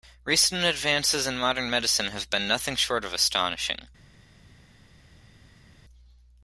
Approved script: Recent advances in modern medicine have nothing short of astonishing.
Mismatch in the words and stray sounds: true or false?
true